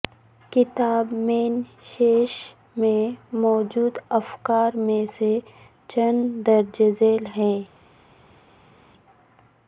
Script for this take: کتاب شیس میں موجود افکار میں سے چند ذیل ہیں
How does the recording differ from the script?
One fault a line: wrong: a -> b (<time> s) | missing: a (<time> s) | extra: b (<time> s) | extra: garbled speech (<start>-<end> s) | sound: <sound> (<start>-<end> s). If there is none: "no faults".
extra: مین (1.2 s)
extra: درج (6.5 s)